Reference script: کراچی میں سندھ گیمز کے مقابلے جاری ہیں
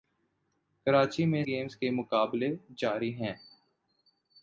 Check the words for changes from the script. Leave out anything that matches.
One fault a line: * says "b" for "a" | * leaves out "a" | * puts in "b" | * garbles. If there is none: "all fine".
* leaves out "سندھ"